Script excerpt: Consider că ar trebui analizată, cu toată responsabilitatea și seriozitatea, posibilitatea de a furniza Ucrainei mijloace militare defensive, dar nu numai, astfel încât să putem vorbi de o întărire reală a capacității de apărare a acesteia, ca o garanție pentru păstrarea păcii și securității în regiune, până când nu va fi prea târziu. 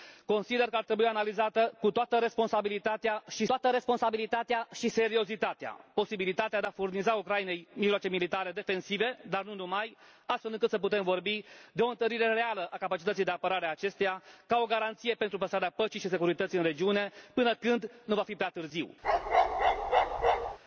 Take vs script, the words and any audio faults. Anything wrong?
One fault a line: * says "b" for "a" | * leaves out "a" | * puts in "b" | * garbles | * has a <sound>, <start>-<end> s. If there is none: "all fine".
* puts in "toată responsabilitatea și"
* has a bark, 19.0-20.6 s